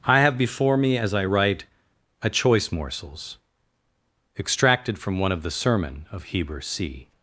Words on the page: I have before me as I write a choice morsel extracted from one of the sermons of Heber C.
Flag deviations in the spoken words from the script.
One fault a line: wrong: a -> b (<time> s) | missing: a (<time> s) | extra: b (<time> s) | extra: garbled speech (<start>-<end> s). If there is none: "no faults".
wrong: morsel -> morsels (2.7 s)
wrong: sermons -> sermon (5.5 s)